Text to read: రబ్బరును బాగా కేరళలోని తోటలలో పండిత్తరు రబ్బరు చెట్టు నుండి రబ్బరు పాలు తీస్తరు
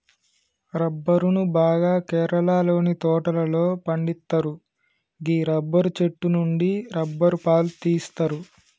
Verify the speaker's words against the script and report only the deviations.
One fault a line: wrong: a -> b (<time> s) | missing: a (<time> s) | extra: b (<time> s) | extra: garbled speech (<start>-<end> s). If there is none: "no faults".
extra: గీ (5.2 s)